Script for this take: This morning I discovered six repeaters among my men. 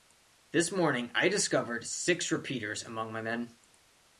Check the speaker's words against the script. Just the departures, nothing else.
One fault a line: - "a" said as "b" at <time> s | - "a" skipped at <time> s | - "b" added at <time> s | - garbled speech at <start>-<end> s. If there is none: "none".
none